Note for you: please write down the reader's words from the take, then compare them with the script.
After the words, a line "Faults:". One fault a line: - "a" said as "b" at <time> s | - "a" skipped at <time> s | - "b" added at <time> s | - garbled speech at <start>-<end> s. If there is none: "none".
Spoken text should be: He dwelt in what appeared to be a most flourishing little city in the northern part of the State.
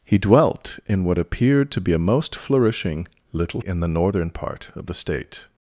He dwelt in what appeared to be a most flourishing little in the northern part of the State.
Faults:
- "city" skipped at 3.6 s